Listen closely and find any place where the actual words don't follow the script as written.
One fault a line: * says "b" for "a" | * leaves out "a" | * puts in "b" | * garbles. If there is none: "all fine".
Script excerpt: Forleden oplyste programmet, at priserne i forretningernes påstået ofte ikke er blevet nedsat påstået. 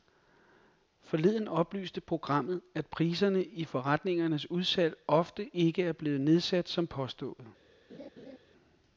* says "udsalg" for "påstået"
* puts in "som"